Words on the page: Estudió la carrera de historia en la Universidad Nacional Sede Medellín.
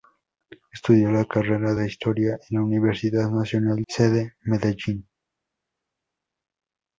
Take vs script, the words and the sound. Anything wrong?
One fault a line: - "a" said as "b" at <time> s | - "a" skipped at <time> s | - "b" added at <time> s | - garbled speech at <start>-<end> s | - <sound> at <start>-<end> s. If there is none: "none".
none